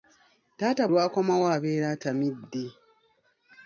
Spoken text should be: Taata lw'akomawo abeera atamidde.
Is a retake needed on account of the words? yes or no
no